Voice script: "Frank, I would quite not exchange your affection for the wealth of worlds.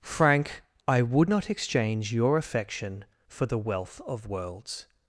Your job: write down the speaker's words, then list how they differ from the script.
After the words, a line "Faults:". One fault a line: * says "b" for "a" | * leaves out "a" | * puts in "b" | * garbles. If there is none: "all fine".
"Frank, I would not exchange your affection for the wealth of worlds.
Faults:
* leaves out "quite"